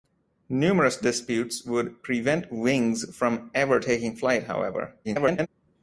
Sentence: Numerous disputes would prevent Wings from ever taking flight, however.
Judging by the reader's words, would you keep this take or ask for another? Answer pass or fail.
fail